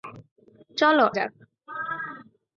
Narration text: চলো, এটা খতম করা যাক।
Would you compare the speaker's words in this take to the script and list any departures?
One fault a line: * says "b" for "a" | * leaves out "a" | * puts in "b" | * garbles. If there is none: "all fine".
* leaves out "এটা খতম করা"